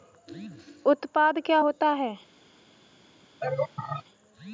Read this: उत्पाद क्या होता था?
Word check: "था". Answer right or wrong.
wrong